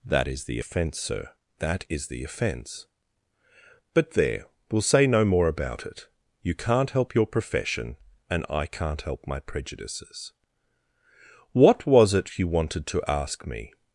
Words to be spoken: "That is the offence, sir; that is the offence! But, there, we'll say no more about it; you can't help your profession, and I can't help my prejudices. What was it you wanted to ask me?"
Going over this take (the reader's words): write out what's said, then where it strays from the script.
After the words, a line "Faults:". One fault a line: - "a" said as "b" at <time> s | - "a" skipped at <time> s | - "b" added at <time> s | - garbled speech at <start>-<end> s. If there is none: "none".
"That is the offence, sir; that is the offence! But, there, we'll say no more about it; you can't help your profession, and I can't help my prejudices. What was it you wanted to ask me?"
Faults:
none